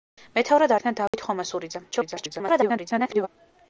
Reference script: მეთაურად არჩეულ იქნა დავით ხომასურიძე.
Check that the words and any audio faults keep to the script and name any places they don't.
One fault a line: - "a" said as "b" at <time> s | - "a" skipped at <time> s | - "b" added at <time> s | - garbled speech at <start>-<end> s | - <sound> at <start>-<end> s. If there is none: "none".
- "არჩეულ" skipped at 0.7 s
- dropout at 1.1-1.1 s
- garbled speech at 1.9-3.3 s